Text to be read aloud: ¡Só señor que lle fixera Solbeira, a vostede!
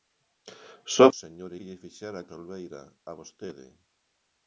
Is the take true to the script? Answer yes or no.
yes